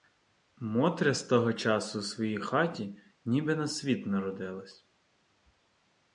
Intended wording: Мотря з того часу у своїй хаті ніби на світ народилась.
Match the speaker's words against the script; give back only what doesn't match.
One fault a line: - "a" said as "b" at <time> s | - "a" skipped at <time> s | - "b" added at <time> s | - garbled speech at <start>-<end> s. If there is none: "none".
none